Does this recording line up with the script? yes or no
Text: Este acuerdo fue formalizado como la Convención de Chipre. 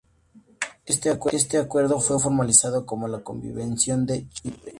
yes